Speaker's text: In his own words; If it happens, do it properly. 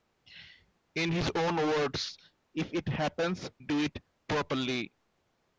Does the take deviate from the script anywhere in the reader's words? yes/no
no